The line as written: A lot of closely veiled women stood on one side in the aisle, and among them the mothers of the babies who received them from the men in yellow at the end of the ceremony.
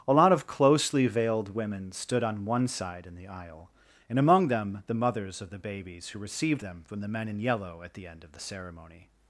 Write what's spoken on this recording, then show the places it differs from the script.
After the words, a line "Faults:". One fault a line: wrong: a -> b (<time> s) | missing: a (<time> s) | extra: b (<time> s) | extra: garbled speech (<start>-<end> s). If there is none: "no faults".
A lot of closely veiled women stood on one side in the aisle, and among them the mothers of the babies who received them from the men in yellow at the end of the ceremony.
Faults:
no faults